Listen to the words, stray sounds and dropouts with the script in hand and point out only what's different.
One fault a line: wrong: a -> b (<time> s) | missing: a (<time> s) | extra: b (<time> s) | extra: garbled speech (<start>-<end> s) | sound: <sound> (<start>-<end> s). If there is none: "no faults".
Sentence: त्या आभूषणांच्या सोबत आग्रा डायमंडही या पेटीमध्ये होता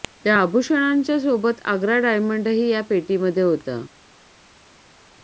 no faults